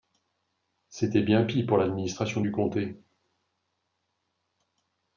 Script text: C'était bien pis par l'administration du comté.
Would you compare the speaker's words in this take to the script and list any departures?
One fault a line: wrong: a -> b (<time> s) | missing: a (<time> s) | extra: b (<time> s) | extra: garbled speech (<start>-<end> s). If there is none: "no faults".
wrong: par -> pour (1.6 s)